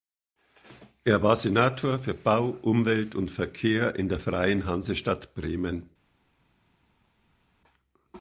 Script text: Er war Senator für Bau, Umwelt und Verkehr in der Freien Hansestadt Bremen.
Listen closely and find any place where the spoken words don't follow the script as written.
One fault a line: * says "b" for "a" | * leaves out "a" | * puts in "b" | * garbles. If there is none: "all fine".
all fine